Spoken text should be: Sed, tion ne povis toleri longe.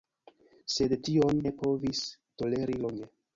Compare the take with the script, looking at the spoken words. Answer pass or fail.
pass